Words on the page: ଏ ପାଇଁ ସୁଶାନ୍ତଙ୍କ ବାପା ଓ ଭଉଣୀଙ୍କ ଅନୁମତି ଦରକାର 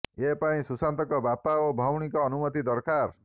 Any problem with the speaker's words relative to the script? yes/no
no